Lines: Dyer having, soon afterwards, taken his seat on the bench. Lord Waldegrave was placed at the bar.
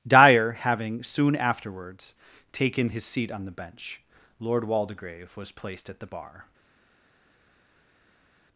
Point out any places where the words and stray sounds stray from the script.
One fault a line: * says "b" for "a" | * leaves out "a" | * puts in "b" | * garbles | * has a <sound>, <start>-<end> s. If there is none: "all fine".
all fine